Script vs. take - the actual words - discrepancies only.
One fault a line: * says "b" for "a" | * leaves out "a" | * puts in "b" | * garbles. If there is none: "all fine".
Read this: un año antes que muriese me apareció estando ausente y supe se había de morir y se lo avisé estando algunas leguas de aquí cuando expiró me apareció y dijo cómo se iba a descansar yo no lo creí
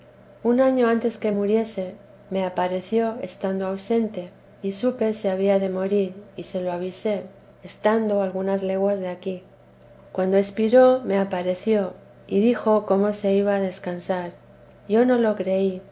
all fine